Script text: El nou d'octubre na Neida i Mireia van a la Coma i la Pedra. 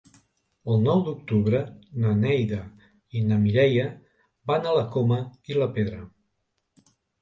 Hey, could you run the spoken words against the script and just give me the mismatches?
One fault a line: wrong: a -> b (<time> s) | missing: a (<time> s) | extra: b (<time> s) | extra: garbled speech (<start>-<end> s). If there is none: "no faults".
extra: na (3.3 s)